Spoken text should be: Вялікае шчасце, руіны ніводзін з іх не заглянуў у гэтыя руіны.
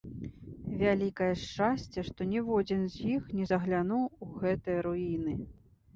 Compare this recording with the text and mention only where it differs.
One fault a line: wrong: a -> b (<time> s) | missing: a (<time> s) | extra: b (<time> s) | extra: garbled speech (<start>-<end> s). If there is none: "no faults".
wrong: руіны -> што (2.1 s)